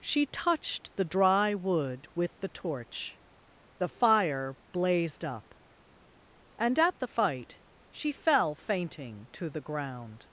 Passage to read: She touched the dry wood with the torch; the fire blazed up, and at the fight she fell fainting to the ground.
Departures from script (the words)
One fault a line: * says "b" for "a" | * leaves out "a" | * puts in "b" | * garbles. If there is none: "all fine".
all fine